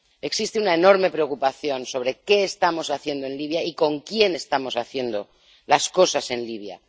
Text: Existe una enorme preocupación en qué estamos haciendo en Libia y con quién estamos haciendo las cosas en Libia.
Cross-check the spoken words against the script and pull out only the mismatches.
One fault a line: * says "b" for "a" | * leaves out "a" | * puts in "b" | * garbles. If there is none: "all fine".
* says "sobre" for "en"